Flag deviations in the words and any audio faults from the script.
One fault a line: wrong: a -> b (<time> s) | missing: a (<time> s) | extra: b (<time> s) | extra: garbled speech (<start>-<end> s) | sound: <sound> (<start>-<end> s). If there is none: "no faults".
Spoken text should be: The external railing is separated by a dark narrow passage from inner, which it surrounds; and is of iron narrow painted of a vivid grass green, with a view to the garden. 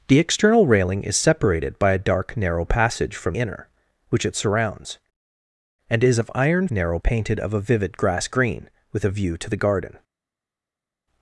no faults